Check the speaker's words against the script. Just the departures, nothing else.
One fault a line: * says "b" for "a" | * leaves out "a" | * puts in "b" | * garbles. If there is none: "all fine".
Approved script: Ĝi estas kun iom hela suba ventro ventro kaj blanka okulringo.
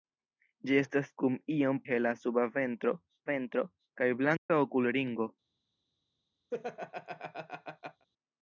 all fine